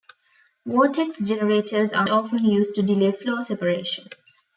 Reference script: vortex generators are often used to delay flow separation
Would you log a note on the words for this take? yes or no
no